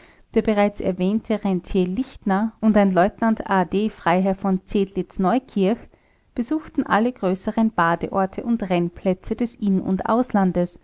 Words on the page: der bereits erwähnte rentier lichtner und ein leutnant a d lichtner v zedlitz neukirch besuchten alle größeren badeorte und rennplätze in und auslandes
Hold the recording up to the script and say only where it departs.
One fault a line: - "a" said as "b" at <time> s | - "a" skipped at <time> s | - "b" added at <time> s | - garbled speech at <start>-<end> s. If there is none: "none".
- "lichtner" said as "freiherr" at 3.9 s
- "des" added at 9.4 s